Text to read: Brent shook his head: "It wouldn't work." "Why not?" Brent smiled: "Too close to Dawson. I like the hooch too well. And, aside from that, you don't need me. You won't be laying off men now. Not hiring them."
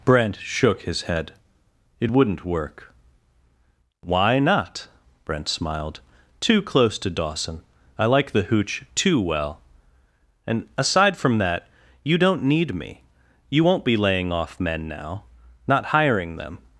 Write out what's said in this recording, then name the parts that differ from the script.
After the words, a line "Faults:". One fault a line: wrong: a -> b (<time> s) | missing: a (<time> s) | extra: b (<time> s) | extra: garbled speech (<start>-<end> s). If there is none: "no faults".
Brent shook his head: "It wouldn't work." "Why not?" Brent smiled: "Too close to Dawson. I like the hooch too well. And, aside from that, you don't need me. You won't be laying off men now. Not hiring them."
Faults:
no faults